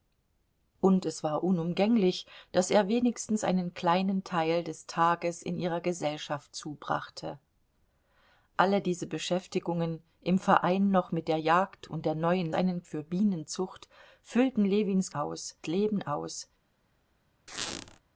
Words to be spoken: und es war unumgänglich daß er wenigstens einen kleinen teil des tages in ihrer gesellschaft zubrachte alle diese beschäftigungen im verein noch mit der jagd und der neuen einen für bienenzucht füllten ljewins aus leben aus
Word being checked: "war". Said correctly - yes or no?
yes